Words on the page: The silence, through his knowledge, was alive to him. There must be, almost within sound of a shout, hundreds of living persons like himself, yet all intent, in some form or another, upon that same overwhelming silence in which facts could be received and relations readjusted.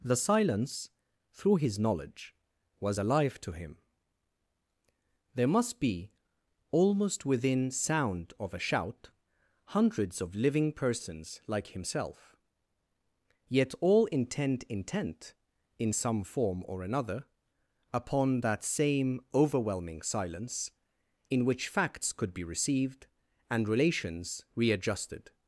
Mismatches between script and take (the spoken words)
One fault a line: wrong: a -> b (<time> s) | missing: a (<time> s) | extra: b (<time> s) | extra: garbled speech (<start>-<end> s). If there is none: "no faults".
extra: intent (14.7 s)